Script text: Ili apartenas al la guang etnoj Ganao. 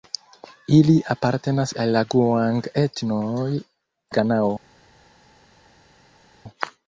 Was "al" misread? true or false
false